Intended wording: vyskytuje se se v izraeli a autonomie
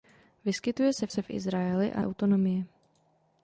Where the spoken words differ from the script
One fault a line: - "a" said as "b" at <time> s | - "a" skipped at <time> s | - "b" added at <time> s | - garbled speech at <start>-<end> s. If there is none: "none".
none